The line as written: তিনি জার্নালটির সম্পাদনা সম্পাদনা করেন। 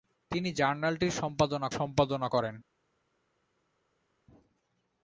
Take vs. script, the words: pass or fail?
pass